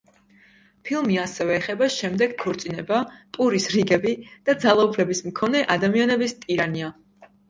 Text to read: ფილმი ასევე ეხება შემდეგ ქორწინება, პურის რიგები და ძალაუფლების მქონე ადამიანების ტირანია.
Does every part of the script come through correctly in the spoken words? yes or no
yes